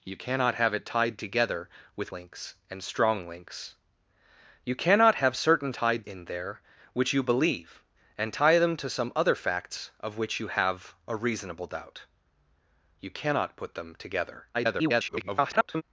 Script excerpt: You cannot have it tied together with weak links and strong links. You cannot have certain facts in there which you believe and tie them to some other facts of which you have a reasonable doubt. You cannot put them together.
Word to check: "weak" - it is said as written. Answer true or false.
false